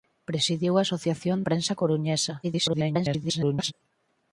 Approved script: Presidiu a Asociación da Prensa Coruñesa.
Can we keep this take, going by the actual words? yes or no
no